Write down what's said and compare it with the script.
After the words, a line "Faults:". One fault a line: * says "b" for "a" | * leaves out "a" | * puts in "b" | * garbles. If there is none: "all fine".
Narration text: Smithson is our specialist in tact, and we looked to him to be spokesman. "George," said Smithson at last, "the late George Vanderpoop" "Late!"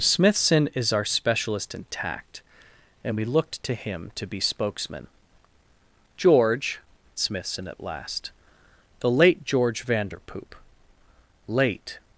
Smithson is our specialist in tact, and we looked to him to be spokesman. "George," Smithson at last, "the late George Vanderpoop" "Late!"
Faults:
* leaves out "said"